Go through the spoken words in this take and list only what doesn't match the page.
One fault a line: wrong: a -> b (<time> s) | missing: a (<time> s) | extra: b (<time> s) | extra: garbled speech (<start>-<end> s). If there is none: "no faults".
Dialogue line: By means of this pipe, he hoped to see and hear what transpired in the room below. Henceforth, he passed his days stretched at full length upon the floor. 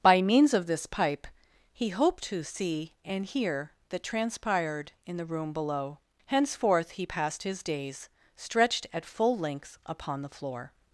wrong: what -> that (3.9 s)